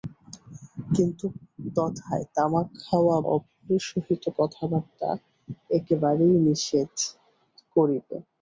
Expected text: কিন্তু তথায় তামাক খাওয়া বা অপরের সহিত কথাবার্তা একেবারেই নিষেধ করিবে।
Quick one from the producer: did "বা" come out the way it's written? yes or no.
no